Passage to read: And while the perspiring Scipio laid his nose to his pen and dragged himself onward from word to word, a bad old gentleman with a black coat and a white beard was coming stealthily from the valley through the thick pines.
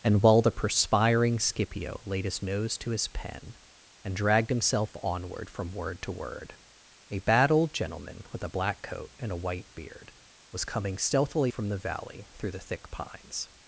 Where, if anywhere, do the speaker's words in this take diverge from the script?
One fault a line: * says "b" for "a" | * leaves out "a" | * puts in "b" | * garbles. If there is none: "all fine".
all fine